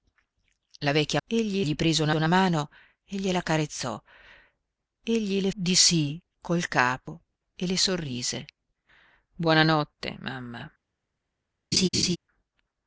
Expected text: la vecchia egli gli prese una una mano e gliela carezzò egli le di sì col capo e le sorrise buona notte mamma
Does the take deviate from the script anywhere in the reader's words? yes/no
no